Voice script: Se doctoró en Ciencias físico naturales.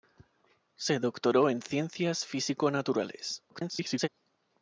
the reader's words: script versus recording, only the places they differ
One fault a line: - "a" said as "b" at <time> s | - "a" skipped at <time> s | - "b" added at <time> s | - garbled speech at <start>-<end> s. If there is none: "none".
- garbled speech at 3.5-4.1 s